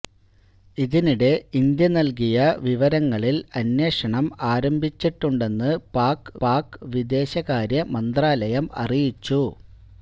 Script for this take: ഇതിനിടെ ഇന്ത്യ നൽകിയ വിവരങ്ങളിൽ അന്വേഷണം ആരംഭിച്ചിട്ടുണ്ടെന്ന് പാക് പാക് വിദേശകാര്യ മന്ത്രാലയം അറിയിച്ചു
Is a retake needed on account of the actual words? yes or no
no